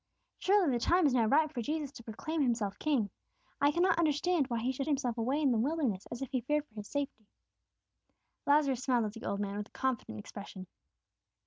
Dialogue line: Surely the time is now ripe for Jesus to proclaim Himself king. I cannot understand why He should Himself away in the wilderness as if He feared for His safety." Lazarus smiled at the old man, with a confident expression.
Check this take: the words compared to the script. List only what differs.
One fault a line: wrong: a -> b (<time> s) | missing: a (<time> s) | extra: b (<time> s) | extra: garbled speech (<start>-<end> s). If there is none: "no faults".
no faults